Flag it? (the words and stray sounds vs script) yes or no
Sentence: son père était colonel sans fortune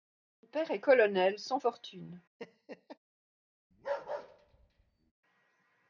yes